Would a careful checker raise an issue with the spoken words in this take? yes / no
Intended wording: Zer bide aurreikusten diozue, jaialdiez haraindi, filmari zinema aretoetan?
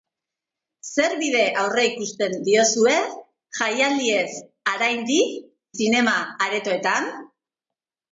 yes